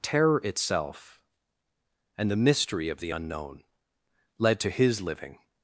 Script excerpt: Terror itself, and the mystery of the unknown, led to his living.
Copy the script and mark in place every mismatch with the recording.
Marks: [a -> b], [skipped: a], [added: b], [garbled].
Terror itself, and the mystery of the unknown, led to his living.